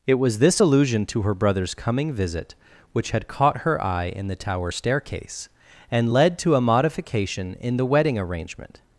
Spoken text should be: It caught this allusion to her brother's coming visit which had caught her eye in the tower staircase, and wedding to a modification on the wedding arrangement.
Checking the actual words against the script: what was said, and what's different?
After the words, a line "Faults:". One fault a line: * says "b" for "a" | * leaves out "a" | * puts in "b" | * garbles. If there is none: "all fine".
It was this allusion to her brother's coming visit which had caught her eye in the tower staircase, and led to a modification in the wedding arrangement.
Faults:
* says "was" for "caught"
* says "led" for "wedding"
* says "in" for "on"